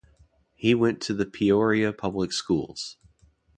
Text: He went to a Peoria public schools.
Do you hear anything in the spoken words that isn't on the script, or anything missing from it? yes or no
yes